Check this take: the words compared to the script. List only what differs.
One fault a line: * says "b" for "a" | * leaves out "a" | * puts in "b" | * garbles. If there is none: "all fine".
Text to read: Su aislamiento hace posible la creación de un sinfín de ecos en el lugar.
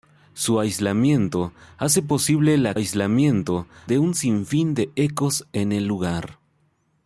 * says "aislamiento" for "creación"